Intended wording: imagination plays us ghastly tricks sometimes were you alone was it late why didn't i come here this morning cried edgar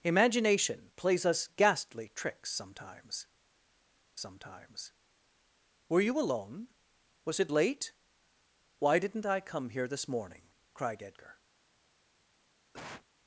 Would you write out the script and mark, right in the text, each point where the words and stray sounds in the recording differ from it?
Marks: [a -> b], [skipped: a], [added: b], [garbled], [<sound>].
imagination plays us ghastly tricks sometimes [added: sometimes] were you alone was it late why didn't i come here this morning cried edgar [cough]